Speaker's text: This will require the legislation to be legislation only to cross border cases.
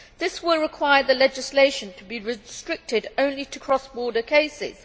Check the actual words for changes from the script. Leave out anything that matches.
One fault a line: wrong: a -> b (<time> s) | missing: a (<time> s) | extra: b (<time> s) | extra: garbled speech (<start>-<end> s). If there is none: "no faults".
wrong: legislation -> restricted (2.2 s)